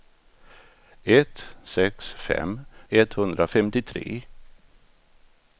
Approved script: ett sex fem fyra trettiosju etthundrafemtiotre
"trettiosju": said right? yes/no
no